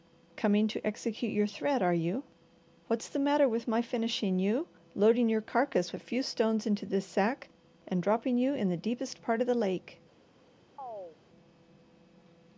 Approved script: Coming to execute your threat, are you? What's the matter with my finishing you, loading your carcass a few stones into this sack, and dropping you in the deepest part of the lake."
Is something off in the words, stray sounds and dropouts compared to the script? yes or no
yes